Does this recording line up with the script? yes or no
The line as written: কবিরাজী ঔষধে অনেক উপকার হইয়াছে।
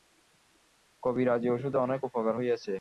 yes